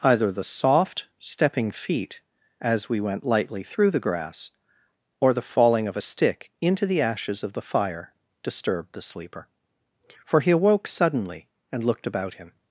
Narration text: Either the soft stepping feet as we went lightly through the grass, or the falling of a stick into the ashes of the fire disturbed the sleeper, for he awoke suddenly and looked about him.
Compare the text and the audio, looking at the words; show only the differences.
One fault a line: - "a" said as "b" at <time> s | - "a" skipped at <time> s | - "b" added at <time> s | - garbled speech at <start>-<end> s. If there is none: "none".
none